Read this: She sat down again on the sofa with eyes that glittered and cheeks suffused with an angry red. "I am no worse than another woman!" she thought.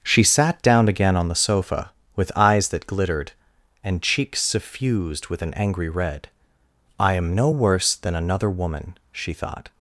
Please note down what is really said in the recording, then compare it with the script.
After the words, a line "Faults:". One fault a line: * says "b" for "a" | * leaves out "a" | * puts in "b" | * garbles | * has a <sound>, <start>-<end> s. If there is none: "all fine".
She sat down again on the sofa with eyes that glittered and cheeks suffused with an angry red. "I am no worse than another woman!" she thought.
Faults:
all fine